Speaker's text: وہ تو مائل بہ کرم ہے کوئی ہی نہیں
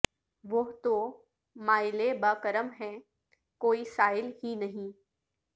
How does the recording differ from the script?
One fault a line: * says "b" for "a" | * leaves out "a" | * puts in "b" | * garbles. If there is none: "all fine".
* puts in "سائل"